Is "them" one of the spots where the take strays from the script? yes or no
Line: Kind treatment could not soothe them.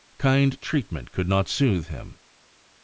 yes